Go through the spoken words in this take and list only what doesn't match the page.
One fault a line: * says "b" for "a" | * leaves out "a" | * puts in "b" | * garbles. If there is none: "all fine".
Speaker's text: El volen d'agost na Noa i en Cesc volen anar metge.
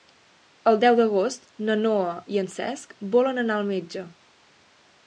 * says "deu" for "volen"
* puts in "al"